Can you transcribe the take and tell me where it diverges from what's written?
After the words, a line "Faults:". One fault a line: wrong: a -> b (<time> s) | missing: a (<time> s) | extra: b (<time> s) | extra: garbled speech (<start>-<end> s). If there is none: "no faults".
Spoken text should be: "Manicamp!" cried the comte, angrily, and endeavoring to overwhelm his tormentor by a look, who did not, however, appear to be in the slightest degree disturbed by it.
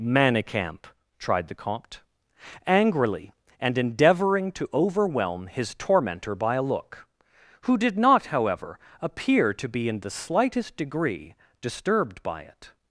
"Manicamp!" tried the comte, angrily, and endeavoring to overwhelm his tormentor by a look, who did not, however, appear to be in the slightest degree disturbed by it.
Faults:
wrong: cried -> tried (1.2 s)